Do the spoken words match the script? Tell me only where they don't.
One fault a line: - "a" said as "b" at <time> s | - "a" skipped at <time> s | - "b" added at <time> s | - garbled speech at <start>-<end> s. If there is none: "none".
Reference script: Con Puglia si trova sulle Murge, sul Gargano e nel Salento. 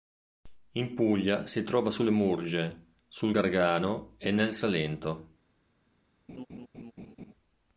- "Con" said as "In" at 0.7 s